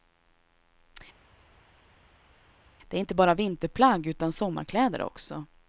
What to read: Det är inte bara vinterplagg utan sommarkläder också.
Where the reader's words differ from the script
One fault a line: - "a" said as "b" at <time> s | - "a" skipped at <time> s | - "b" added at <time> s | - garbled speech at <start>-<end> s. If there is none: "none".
none